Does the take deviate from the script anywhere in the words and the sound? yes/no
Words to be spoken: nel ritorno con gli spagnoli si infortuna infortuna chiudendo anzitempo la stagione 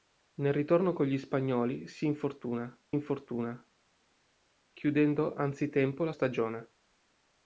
no